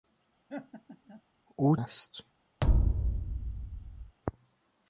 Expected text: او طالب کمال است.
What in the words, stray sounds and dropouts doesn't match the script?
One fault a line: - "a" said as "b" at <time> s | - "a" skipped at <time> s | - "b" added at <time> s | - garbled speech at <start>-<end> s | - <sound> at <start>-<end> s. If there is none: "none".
- laugh at 0.5-1.2 s
- "طالب کمال" skipped at 1.8 s
- thud at 2.6-4.2 s